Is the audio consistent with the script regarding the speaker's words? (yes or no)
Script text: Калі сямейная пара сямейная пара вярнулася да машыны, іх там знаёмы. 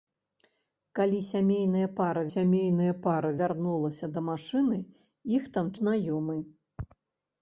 yes